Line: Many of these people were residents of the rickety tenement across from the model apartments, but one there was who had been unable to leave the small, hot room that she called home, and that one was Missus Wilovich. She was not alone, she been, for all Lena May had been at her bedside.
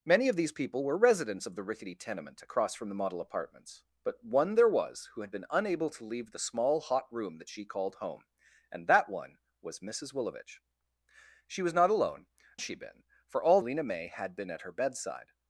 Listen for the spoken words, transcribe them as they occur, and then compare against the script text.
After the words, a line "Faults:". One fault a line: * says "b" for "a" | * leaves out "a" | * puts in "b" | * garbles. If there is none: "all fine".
Many of these people were residents of the rickety tenement across from the model apartments, but one there was who had been unable to leave the small, hot room that she called home, and that one was Missus Wilovich. She was not alone, she been, for all Lena May had been at her bedside.
Faults:
all fine